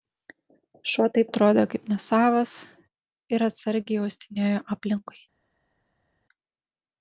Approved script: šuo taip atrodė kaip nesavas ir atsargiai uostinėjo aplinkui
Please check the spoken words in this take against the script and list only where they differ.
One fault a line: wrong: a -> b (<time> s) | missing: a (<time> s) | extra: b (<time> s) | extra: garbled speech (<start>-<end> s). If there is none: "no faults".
no faults